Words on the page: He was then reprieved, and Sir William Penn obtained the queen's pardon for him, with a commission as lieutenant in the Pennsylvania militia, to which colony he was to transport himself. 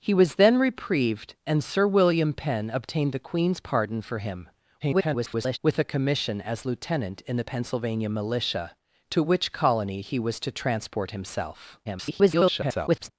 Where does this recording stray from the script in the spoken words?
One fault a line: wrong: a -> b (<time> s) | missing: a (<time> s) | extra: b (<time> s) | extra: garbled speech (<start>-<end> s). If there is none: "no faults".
extra: garbled speech (4.8-5.6 s)
extra: garbled speech (11.8-13.1 s)